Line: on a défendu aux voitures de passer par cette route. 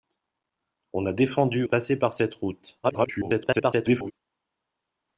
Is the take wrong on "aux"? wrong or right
wrong